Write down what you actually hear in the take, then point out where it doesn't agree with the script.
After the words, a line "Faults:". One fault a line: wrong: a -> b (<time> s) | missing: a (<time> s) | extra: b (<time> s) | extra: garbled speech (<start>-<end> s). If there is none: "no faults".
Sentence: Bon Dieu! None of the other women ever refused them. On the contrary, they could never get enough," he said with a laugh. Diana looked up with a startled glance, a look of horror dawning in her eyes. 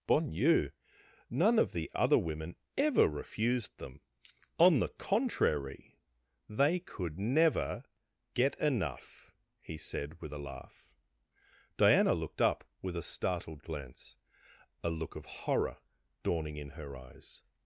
Bon Dieu! None of the other women ever refused them. On the contrary, they could never get enough," he said with a laugh. Diana looked up with a startled glance, a look of horror dawning in her eyes.
Faults:
no faults